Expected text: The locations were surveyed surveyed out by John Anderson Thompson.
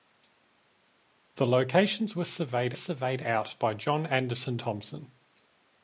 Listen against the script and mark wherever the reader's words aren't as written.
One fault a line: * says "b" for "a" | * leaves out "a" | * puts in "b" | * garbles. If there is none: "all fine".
all fine